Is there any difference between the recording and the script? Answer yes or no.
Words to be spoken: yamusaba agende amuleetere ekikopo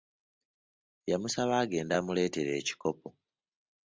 no